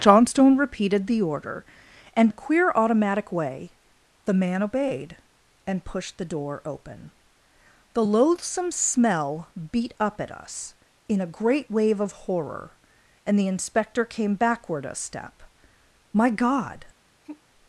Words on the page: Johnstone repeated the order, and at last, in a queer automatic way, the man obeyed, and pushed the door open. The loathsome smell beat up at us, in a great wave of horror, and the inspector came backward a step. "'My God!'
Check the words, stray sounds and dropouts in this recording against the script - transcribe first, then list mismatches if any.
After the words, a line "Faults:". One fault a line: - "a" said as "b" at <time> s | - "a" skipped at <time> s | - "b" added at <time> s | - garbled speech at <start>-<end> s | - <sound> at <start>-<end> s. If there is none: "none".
Johnstone repeated the order, and a queer automatic way, the man obeyed, and pushed the door open. The loathsome smell beat up at us, in a great wave of horror, and the inspector came backward a step. "'My God!'
Faults:
- "at last in" skipped at 2.3 s
- sigh at 17.2-17.4 s